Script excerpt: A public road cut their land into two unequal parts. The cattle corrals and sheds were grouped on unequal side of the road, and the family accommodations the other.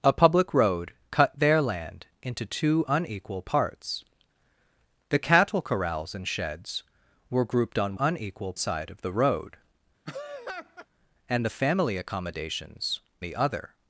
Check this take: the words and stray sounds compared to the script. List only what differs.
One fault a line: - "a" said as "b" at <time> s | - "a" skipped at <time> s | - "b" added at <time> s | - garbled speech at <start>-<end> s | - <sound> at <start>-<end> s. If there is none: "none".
- laugh at 10.0-10.9 s